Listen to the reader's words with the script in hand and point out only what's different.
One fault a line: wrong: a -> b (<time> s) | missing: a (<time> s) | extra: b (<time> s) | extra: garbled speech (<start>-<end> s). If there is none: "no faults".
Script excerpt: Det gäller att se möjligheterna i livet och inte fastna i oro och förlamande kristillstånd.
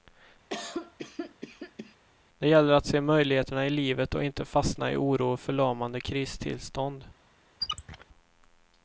no faults